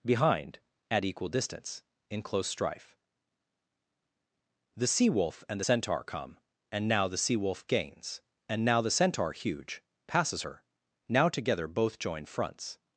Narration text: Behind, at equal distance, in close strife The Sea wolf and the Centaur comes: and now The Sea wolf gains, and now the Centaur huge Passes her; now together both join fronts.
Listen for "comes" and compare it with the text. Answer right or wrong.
wrong